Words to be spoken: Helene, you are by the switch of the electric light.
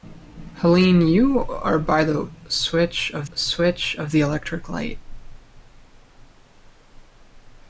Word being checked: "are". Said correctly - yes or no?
yes